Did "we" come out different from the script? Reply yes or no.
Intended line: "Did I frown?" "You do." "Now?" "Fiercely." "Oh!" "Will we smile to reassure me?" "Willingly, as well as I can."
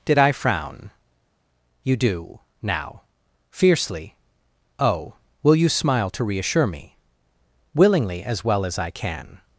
yes